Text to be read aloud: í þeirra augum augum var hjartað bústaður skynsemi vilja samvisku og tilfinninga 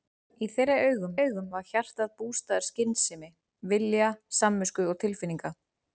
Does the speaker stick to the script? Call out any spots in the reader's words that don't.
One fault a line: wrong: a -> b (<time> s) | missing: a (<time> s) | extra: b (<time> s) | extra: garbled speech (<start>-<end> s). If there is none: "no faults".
no faults